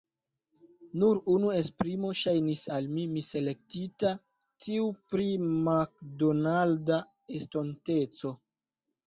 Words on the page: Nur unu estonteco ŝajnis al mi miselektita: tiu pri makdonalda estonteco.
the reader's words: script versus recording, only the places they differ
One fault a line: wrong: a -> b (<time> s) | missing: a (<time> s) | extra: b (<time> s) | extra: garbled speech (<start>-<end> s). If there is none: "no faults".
wrong: estonteco -> esprimo (1.6 s)